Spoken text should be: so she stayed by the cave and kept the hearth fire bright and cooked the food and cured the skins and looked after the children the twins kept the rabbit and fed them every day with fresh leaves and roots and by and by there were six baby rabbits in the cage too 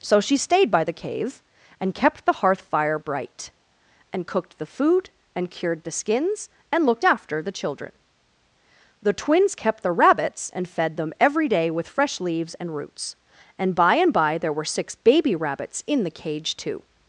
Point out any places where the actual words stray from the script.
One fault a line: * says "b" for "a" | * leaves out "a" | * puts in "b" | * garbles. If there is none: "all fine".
* says "rabbits" for "rabbit"